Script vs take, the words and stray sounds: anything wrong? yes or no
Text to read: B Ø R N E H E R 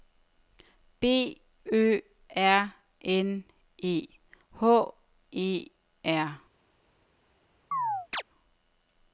yes